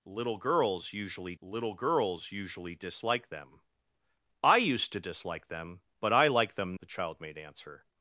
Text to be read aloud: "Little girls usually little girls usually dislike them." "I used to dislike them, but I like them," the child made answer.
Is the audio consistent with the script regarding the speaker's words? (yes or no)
yes